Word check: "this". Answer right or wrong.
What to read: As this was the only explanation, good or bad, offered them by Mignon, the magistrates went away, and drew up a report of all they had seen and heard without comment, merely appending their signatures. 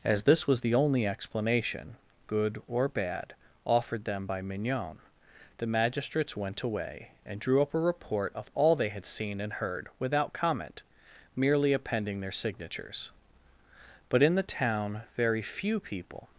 right